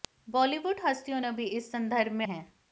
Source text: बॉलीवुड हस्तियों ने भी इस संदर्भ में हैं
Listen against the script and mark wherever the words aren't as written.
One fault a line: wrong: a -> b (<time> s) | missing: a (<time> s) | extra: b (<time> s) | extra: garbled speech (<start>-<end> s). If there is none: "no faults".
no faults